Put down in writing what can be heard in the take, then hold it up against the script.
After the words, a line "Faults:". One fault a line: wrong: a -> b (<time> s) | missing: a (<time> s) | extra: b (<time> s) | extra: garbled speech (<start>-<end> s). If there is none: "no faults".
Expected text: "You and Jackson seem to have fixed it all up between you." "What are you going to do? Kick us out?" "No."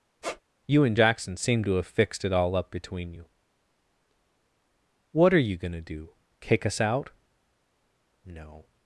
"You and Jackson seem to have fixed it all up between you." "What are you going to do? Kick us out?" "No."
Faults:
no faults